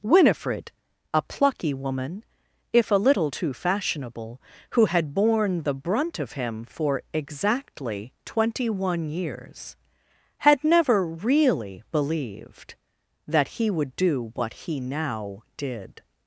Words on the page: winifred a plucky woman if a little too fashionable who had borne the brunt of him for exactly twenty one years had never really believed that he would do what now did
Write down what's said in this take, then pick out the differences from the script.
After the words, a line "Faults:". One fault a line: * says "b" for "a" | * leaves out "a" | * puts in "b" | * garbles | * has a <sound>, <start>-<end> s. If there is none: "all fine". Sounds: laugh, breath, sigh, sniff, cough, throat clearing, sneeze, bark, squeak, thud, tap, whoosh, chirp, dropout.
winifred a plucky woman if a little too fashionable who had borne the brunt of him for exactly twenty one years had never really believed that he would do what he now did
Faults:
* puts in "he"